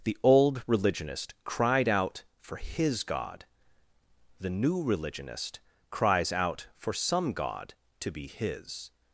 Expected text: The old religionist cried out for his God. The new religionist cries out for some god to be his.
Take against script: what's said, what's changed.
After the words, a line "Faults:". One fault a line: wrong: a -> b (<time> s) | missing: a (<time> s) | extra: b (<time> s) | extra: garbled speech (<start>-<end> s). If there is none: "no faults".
The old religionist cried out for his God. The new religionist cries out for some god to be his.
Faults:
no faults